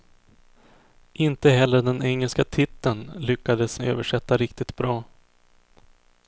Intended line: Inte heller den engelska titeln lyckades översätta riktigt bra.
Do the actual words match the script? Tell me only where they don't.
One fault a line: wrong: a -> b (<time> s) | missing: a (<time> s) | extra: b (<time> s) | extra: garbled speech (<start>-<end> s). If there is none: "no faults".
no faults